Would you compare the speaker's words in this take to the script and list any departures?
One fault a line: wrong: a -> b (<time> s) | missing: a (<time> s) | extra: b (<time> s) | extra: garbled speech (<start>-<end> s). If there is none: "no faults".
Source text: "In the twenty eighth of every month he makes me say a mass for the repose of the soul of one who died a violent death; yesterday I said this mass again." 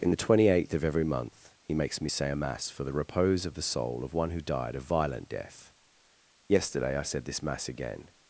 no faults